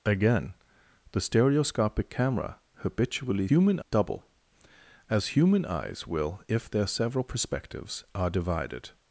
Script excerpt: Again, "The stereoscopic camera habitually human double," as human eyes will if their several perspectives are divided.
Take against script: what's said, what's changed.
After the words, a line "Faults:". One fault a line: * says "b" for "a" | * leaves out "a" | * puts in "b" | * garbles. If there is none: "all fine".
Again, "The stereoscopic camera habitually human double," as human eyes will if their several perspectives are divided.
Faults:
all fine